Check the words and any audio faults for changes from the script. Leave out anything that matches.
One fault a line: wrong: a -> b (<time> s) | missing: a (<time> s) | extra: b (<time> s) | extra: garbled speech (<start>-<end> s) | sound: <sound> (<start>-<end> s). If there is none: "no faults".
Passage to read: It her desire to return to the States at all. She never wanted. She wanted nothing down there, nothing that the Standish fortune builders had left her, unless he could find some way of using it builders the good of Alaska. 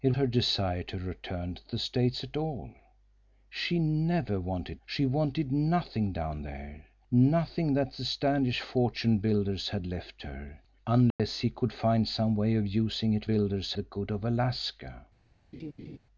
sound: dropout (11.1-11.2 s)
sound: laugh (15.5-16.0 s)